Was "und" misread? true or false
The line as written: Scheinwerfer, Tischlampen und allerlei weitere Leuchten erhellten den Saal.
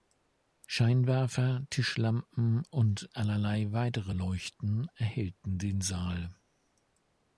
false